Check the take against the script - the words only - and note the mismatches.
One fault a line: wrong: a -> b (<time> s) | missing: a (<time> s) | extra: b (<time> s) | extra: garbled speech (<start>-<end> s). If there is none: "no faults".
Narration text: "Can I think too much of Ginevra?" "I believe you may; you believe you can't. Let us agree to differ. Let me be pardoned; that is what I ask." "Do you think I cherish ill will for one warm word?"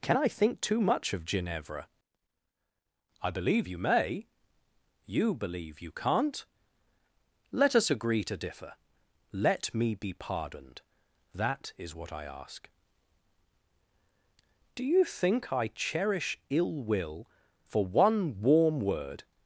no faults